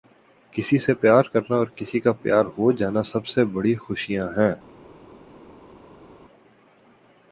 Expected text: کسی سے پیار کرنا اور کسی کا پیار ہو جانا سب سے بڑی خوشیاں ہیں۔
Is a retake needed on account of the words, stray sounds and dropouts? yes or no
no